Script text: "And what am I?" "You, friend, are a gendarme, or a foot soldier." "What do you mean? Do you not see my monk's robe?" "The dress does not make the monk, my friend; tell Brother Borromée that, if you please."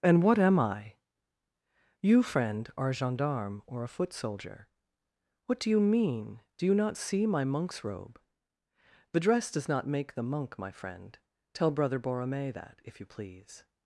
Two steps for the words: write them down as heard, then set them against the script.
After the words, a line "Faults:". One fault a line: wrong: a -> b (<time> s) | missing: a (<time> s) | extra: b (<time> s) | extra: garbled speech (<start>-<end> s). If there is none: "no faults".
"And what am I?" "You, friend, are a gendarme, or a foot soldier." "What do you mean? Do you not see my monk's robe?" "The dress does not make the monk, my friend; tell Brother Borromée that, if you please."
Faults:
no faults